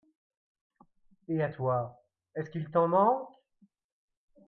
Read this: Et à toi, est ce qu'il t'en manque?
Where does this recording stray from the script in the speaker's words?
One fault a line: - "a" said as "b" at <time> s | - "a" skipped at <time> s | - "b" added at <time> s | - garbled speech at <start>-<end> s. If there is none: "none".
none